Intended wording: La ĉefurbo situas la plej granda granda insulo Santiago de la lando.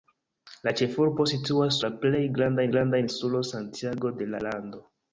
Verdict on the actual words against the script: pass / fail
pass